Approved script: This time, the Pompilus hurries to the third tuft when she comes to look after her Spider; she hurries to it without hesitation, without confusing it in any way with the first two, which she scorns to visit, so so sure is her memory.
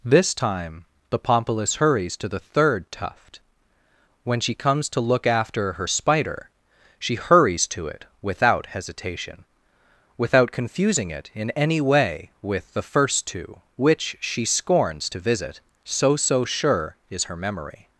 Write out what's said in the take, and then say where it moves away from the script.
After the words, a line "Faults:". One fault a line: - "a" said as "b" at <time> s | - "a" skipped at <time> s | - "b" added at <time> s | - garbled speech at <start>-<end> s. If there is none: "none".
This time, the Pompilus hurries to the third tuft when she comes to look after her Spider; she hurries to it without hesitation, without confusing it in any way with the first two, which she scorns to visit, so so sure is her memory.
Faults:
none